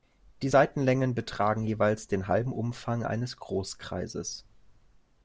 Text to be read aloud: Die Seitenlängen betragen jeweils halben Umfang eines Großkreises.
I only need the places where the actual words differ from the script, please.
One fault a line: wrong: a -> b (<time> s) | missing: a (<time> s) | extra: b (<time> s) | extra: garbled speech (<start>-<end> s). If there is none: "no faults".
extra: den (2.1 s)